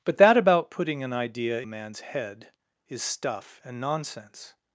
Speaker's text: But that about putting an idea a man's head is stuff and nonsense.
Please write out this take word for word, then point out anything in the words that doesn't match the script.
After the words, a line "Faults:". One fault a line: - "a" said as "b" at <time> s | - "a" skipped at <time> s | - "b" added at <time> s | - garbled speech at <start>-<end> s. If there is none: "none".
But that about putting an idea a man's head is stuff and nonsense.
Faults:
none